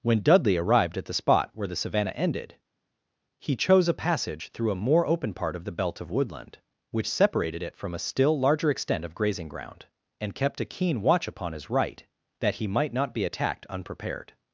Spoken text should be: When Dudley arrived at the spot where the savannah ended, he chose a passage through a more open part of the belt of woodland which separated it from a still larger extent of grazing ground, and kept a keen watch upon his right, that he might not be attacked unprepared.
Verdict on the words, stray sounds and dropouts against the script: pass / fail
pass